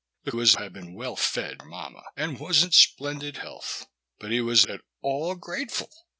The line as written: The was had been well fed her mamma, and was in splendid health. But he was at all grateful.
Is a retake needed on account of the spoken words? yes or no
no